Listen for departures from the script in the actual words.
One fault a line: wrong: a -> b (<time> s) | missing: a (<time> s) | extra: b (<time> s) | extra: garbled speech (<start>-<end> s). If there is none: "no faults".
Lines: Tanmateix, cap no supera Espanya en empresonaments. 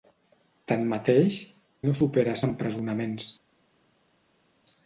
missing: cap (1.4 s)
missing: Espanya (2.4 s)